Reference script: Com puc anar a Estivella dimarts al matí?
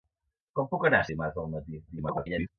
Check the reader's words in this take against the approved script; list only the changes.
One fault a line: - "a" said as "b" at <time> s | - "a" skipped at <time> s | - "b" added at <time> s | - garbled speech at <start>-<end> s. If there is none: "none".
- "Estivella" skipped at 1.1 s
- garbled speech at 1.9-2.5 s